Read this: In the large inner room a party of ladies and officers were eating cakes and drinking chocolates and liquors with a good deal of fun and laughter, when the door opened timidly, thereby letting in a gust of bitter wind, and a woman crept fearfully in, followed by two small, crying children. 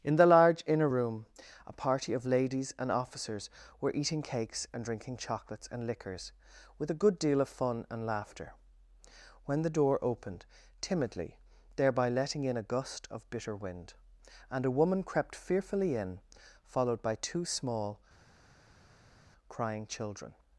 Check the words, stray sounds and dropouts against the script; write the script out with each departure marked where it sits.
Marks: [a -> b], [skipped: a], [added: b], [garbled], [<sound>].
In the large inner room a party of ladies and officers were eating cakes and drinking chocolates and liquors with a good deal of fun and laughter, when the door opened timidly, thereby letting in a gust of bitter wind, and a woman crept fearfully in, followed by two small, crying children.